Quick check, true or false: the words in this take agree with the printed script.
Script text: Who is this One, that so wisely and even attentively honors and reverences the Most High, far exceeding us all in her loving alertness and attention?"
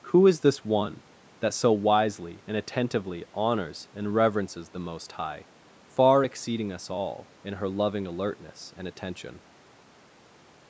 false